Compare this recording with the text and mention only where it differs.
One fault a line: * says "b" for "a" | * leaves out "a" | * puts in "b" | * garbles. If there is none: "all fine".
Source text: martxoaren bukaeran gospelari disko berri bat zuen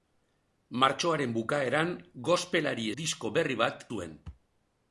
all fine